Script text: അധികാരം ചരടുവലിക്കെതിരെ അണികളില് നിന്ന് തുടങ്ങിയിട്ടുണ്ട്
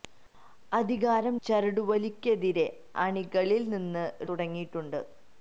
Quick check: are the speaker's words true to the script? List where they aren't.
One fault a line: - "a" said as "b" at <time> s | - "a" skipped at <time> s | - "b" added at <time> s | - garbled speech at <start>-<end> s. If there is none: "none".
none